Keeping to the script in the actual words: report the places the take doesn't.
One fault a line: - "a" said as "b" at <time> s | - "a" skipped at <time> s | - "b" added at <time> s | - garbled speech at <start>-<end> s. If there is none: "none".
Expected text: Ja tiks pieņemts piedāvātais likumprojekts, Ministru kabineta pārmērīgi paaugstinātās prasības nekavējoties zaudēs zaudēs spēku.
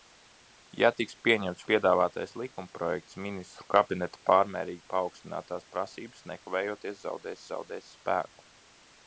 none